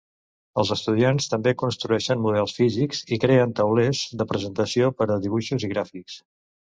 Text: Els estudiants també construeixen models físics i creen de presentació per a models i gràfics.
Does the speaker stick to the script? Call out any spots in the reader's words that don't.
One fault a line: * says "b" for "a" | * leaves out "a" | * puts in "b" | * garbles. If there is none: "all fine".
* puts in "taulers"
* says "dibuixos" for "models"